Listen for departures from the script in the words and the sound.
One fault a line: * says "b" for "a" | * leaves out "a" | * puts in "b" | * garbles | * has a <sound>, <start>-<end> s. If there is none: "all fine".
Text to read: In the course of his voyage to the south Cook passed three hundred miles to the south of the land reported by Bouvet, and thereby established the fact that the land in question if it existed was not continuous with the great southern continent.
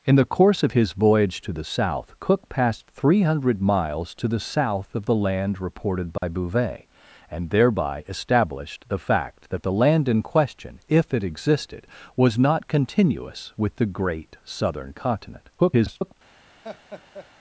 * has a dropout, 6.2-6.2 s
* garbles
* has a laugh, 16.6-17.3 s